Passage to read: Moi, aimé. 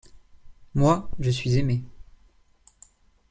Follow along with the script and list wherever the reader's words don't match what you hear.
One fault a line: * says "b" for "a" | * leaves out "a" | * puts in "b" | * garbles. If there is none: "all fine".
* puts in "je suis"